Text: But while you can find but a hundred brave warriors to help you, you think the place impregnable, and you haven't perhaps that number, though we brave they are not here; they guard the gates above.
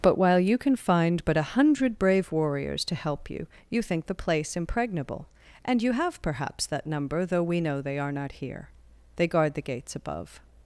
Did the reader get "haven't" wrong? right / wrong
wrong